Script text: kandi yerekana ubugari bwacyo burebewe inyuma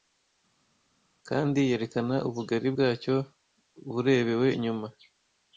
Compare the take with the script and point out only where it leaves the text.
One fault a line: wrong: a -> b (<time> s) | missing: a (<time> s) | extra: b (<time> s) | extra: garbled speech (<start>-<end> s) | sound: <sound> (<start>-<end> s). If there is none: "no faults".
no faults